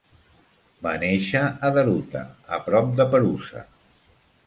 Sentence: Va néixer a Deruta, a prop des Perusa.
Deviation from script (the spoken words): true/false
true